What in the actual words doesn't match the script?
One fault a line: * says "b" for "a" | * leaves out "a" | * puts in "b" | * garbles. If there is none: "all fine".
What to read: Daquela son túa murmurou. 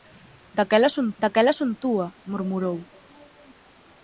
* puts in "daquela son"